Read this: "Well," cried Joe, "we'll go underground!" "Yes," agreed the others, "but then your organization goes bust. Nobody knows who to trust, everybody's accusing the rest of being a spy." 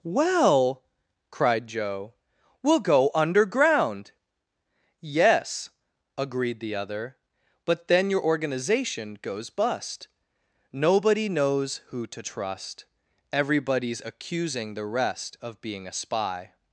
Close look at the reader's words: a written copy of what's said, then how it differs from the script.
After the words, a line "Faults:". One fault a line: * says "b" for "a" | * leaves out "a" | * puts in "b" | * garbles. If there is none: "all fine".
"Well," cried Joe, "we'll go underground!" "Yes," agreed the other, "but then your organization goes bust. Nobody knows who to trust, everybody's accusing the rest of being a spy."
Faults:
* says "other" for "others"